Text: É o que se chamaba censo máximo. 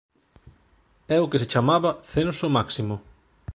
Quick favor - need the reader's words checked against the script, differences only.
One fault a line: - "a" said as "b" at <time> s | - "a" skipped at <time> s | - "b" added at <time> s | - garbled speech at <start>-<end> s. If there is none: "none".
none